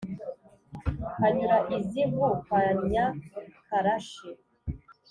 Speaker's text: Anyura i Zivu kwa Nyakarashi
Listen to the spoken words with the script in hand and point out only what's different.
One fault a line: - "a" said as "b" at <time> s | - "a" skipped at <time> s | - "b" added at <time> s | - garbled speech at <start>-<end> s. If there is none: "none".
none